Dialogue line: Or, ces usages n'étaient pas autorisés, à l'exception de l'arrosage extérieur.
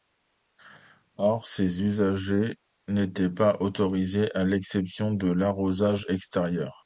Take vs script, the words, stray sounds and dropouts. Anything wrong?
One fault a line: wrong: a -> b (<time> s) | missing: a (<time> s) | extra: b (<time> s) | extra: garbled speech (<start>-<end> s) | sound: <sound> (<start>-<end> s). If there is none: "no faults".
no faults